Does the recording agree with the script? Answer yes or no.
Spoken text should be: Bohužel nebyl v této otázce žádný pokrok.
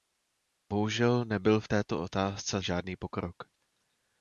yes